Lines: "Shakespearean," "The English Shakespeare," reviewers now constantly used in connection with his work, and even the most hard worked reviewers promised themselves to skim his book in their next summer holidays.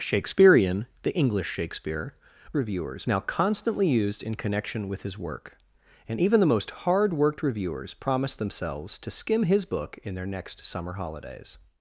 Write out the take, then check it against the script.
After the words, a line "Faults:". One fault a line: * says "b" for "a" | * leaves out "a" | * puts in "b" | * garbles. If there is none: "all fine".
"Shakespearean," "The English Shakespeare," reviewers now constantly used in connection with his work, and even the most hard worked reviewers promised themselves to skim his book in their next summer holidays.
Faults:
all fine